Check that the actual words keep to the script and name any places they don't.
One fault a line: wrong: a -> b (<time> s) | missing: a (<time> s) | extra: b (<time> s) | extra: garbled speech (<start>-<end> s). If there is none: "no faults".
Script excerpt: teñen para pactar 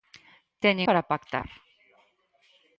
no faults